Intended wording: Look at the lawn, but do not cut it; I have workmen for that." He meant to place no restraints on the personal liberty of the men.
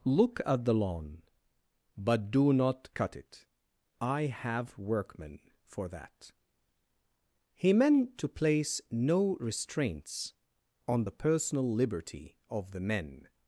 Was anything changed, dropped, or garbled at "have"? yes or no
no